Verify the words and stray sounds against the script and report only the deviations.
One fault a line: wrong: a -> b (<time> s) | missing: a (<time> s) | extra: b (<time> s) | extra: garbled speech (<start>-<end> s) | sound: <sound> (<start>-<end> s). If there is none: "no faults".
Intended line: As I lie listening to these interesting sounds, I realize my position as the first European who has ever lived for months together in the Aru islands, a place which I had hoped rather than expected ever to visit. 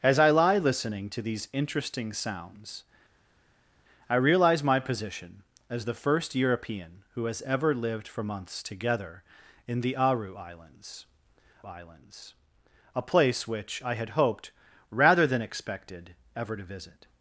extra: islands (11.7 s)